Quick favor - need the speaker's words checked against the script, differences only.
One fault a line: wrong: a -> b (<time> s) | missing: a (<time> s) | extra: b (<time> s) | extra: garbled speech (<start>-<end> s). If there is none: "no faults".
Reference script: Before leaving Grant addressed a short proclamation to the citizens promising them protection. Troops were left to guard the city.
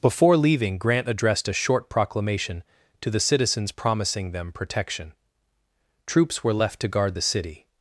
no faults